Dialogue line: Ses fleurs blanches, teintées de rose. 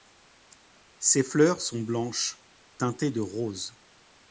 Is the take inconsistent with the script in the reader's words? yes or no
yes